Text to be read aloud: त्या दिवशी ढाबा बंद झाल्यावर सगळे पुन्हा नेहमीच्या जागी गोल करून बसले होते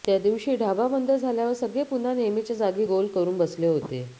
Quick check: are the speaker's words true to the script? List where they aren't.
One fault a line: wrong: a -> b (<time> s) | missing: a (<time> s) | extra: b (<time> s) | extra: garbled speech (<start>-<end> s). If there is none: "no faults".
no faults